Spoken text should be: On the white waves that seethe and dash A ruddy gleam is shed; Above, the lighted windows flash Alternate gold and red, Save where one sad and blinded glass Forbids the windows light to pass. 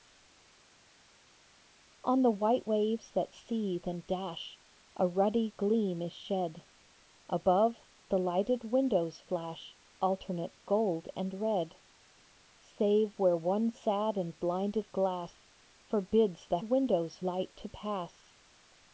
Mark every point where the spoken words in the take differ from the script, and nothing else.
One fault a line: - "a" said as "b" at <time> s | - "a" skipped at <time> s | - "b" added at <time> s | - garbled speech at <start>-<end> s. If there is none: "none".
none